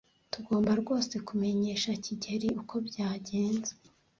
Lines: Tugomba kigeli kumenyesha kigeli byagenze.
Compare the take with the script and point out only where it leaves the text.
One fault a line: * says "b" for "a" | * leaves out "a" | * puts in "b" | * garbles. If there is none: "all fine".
* says "rwose" for "kigeli"
* puts in "uko"